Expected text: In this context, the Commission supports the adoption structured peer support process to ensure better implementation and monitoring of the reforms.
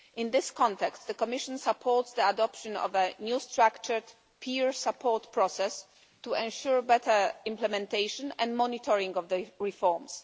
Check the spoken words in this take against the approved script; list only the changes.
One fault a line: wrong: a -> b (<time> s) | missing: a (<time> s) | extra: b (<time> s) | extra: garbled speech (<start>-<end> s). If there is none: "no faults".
extra: of a new (2.8 s)